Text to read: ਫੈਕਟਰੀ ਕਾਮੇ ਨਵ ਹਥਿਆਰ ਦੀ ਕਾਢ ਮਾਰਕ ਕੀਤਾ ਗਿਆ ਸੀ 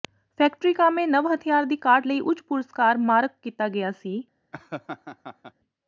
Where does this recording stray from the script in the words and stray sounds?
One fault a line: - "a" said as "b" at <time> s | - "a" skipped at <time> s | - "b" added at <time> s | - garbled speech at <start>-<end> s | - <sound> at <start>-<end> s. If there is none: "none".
- "ਲਈ ਉੱਚ ਪੁਰਸਕਾਰ" added at 2.1 s
- laugh at 4.5-5.5 s